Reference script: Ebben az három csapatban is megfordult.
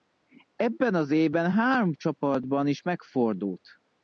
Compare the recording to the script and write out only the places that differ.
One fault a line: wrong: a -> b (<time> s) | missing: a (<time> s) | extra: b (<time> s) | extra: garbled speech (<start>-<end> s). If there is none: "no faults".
extra: évben (1.1 s)